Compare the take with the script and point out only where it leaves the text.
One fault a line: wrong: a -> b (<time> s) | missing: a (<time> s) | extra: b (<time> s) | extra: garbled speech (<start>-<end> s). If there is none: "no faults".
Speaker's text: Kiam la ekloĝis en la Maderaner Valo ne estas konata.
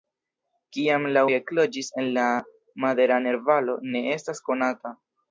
no faults